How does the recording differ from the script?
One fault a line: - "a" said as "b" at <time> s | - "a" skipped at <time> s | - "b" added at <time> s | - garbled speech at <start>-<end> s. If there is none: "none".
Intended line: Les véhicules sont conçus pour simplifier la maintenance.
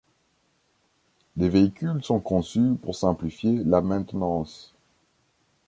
none